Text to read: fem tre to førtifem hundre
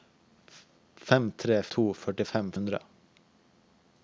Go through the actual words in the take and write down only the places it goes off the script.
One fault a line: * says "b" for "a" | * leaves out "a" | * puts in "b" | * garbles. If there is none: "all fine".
all fine